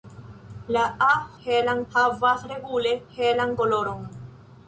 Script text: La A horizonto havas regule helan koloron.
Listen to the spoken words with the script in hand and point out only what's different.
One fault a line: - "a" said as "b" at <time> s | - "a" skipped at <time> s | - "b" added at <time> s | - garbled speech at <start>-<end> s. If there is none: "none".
- "horizonto" said as "helan" at 1.4 s